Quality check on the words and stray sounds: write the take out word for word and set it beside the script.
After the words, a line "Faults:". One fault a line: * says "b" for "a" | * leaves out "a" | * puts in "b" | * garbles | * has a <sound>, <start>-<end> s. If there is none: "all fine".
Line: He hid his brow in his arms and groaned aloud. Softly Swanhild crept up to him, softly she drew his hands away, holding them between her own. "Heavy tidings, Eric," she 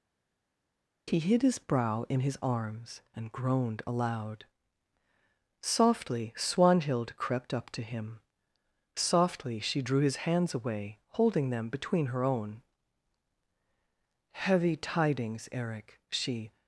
He hid his brow in his arms and groaned aloud. Softly Swanhild crept up to him, softly she drew his hands away, holding them between her own. "Heavy tidings, Eric," she
Faults:
all fine